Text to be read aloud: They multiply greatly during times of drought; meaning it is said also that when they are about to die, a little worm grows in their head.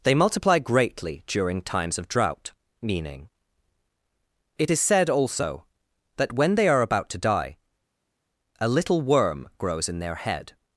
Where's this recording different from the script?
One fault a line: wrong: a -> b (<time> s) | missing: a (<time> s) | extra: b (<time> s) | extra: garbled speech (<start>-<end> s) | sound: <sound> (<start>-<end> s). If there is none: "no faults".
no faults